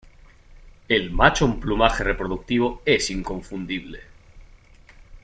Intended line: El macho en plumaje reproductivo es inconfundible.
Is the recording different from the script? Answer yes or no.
no